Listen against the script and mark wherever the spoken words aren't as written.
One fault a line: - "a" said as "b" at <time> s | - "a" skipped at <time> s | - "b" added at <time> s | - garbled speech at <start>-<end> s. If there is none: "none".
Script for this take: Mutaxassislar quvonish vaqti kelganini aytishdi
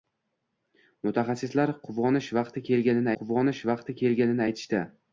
- "quvonish vaqti kelganini" added at 3.2 s